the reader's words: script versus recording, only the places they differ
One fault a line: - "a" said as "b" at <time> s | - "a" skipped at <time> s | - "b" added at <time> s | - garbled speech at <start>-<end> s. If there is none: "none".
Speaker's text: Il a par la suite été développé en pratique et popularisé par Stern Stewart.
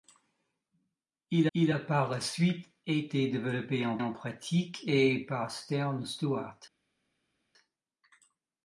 - "il" added at 1.5 s
- "en" added at 4.0 s
- "popularisé" skipped at 5.2 s